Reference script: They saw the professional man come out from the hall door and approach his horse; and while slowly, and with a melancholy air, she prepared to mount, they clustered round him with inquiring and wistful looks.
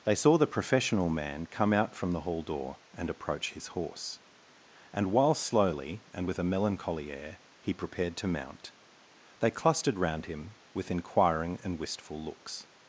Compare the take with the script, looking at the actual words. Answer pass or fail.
fail